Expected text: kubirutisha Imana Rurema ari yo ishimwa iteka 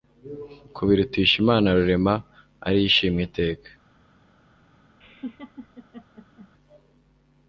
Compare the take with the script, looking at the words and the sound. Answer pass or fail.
fail